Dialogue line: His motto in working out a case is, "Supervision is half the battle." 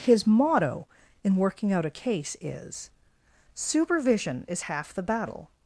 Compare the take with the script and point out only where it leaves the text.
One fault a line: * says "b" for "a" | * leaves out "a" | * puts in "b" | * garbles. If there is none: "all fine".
all fine